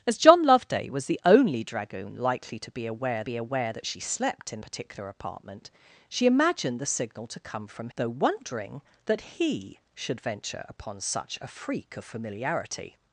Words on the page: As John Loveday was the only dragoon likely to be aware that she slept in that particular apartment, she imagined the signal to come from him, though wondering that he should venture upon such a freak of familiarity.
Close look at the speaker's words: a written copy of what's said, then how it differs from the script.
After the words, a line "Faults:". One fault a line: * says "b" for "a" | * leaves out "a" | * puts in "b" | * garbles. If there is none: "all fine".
As John Loveday was the only dragoon likely to be aware be aware that she slept in particular apartment, she imagined the signal to come from though wondering that he should venture upon such a freak of familiarity.
Faults:
* puts in "be aware"
* leaves out "that"
* leaves out "him"